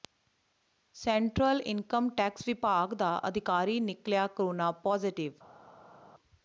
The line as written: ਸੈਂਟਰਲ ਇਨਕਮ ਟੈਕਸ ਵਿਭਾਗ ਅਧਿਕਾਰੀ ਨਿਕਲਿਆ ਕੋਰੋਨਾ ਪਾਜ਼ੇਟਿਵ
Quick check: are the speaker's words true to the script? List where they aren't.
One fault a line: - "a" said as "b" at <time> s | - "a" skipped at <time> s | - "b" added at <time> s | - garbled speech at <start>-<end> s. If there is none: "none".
- "ਦਾ" added at 3.0 s